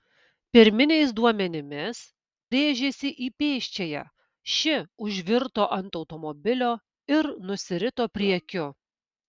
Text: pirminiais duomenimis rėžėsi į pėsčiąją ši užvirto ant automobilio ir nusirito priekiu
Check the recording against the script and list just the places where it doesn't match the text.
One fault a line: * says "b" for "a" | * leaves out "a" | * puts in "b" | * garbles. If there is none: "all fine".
all fine